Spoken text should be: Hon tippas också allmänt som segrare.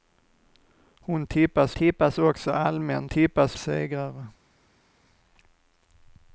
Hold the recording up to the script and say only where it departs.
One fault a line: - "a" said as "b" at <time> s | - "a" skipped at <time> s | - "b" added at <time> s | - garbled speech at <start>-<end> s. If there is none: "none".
- "tippas" added at 1.7 s
- "som" said as "tippas" at 3.1 s